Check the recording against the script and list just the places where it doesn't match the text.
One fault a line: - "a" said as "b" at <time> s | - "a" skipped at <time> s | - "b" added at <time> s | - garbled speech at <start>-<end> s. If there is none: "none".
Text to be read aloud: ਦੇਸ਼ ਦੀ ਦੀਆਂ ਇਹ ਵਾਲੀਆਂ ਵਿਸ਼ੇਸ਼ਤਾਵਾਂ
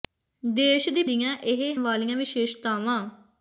none